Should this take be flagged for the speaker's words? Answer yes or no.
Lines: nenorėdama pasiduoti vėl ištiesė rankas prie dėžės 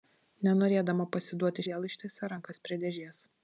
no